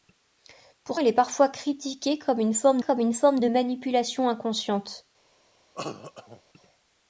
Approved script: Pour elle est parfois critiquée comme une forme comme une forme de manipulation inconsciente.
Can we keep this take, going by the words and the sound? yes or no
no